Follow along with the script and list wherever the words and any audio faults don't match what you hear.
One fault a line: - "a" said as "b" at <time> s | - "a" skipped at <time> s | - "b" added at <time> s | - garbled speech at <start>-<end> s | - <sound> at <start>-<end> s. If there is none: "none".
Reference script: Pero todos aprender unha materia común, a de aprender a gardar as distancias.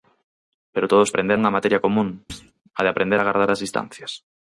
- thud at 2.3-2.5 s